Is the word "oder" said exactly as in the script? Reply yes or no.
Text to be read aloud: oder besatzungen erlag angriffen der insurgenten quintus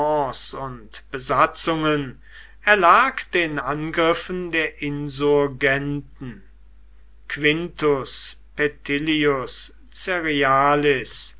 no